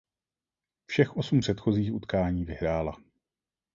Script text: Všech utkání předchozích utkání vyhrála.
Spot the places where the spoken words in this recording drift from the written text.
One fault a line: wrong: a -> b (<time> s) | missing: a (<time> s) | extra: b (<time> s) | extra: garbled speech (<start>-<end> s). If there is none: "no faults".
wrong: utkání -> osm (1.2 s)